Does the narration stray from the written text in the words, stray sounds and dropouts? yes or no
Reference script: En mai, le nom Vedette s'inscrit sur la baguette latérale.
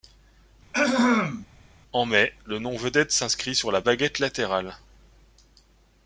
yes